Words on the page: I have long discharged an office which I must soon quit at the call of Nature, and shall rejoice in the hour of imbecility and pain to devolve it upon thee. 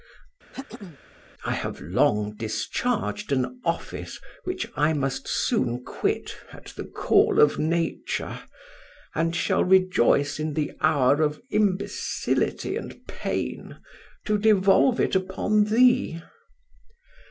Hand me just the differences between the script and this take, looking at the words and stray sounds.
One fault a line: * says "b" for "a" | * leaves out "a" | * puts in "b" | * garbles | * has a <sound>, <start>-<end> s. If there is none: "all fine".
* has a throat clearing, 0.5-1.0 s